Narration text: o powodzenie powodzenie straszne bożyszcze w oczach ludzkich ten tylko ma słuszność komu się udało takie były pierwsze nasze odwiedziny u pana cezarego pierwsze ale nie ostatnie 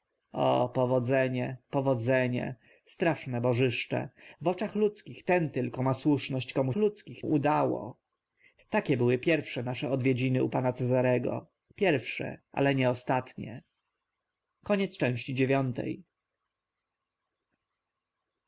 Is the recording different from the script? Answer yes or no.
yes